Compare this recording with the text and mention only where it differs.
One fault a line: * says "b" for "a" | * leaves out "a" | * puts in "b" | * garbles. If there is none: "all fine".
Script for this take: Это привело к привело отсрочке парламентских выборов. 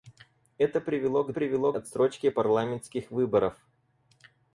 all fine